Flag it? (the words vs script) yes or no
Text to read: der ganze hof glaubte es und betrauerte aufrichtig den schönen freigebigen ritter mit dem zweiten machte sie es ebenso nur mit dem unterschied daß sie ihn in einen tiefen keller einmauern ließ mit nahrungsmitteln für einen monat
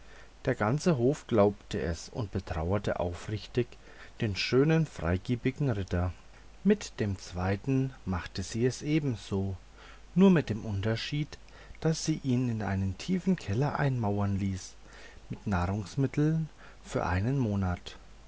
no